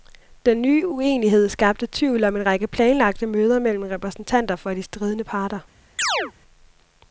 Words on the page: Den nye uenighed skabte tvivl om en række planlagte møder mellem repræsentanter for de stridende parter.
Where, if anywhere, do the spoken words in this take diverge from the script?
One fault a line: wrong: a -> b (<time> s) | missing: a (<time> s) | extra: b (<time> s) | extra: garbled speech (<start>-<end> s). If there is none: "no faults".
no faults